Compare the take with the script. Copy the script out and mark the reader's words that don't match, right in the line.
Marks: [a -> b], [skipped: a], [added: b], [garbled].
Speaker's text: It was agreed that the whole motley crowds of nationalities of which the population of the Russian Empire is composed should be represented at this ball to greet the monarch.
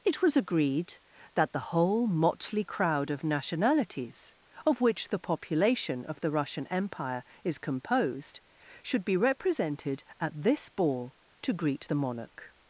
It was agreed that the whole motley [crowds -> crowd] of nationalities of which the population of the Russian Empire is composed should be represented at this ball to greet the monarch.